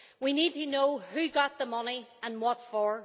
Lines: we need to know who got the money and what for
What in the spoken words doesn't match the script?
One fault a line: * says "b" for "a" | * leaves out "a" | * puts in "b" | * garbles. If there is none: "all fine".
all fine